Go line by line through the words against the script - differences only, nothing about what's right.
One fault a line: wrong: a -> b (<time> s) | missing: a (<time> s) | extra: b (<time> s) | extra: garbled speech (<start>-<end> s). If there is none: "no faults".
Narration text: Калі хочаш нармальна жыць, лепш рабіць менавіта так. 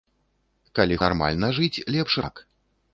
missing: хочаш (1.0 s)
missing: рабіць менавіта (2.1 s)